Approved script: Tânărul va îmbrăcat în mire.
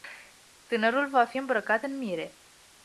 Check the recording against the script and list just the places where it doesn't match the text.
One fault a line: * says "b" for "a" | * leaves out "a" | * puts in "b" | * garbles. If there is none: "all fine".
* puts in "fi"